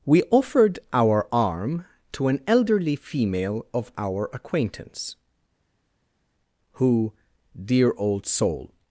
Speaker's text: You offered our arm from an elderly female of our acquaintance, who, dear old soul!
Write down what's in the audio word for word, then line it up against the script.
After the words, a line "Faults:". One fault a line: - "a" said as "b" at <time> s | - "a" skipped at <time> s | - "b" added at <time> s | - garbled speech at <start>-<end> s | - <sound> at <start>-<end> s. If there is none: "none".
We offered our arm to an elderly female of our acquaintance, who, dear old soul!
Faults:
- "You" said as "We" at 0.0 s
- "from" said as "to" at 2.1 s